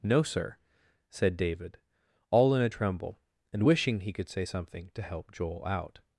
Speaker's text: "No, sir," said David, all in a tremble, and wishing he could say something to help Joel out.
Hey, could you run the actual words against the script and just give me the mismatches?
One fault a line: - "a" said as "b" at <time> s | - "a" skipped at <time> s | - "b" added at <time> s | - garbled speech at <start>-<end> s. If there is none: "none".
none